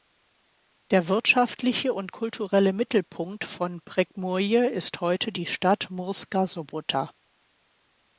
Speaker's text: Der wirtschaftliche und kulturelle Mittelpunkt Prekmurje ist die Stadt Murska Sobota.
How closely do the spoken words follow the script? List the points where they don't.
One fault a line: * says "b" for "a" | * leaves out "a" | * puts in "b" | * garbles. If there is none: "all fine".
* puts in "von"
* puts in "heute"